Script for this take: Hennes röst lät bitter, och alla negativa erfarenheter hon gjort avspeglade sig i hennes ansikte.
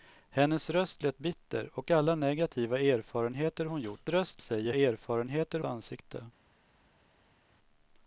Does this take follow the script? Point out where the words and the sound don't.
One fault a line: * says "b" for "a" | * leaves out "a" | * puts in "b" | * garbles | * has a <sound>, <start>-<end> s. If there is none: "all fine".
* says "röst" for "avspeglade"
* says "erfarenheter" for "hennes"